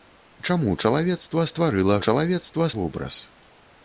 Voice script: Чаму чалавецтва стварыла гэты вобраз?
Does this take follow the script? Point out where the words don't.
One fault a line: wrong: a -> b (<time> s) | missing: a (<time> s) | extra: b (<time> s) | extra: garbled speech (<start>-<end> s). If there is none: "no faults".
wrong: гэты -> чалавецтва (2.1 s)